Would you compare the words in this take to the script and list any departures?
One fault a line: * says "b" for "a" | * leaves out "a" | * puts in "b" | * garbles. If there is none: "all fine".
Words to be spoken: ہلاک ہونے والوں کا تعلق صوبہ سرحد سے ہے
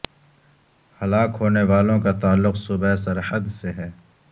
all fine